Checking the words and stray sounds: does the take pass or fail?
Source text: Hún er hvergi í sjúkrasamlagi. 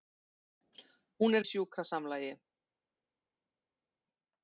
fail